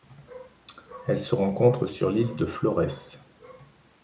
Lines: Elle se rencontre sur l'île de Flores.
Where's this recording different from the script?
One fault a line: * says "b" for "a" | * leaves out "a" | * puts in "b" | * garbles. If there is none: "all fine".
all fine